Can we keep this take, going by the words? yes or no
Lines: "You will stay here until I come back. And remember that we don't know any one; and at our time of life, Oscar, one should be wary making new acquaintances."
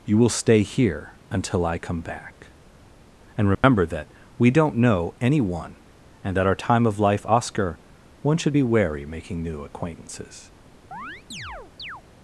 yes